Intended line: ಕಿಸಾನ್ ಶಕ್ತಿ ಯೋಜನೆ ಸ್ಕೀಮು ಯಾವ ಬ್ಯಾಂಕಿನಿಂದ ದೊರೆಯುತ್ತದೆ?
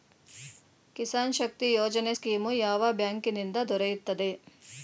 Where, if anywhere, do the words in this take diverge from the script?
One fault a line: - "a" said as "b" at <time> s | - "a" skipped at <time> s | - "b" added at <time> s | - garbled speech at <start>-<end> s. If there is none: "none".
none